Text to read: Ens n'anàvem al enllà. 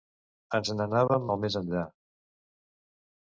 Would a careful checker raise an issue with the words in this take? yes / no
yes